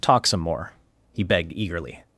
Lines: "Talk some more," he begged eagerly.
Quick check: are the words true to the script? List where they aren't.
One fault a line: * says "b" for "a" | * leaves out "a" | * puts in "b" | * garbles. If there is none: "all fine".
all fine